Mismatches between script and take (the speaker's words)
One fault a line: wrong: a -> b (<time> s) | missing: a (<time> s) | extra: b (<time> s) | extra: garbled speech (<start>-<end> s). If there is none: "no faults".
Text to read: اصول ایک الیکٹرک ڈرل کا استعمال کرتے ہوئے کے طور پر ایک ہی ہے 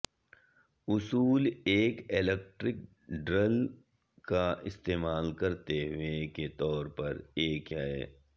missing: ہی (7.7 s)